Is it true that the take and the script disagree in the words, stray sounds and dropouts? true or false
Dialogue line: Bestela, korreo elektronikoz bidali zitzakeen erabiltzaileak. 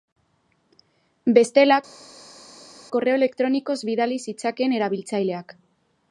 false